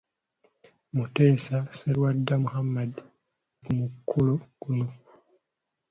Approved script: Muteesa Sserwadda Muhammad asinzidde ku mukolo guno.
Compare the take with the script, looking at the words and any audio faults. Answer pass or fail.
fail